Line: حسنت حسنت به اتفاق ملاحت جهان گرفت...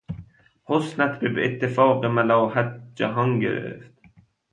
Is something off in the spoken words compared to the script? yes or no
yes